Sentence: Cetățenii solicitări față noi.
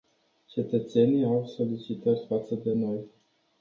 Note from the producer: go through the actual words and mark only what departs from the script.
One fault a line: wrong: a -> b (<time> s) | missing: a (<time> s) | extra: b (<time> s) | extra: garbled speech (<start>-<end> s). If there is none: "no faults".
extra: au (1.2 s)
extra: de (2.5 s)